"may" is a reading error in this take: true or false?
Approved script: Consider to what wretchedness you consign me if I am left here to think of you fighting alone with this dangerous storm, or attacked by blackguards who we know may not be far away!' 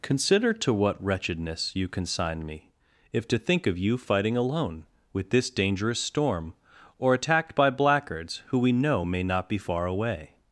false